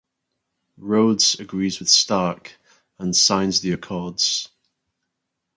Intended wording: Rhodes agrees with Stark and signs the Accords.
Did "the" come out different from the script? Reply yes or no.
no